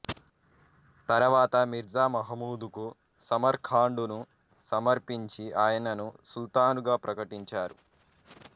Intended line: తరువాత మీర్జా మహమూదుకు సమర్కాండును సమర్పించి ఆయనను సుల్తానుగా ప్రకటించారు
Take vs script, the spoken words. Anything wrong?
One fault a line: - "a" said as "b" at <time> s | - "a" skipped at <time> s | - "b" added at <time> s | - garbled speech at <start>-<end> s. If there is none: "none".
none